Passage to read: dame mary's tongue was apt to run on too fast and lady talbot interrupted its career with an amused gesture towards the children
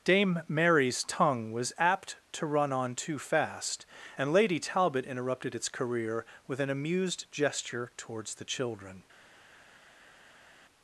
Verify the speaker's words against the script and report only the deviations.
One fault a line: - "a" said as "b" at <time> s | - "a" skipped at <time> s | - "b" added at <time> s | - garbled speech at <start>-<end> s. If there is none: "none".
none